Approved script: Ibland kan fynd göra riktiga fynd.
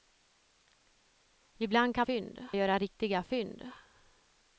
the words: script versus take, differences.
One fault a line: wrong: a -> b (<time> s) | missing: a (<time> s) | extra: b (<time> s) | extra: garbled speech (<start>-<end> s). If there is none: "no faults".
no faults